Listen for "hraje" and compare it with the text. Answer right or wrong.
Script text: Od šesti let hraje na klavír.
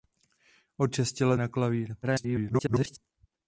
wrong